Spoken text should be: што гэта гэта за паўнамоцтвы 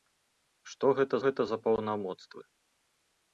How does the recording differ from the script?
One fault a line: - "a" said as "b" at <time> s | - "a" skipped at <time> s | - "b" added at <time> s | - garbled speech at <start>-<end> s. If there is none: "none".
none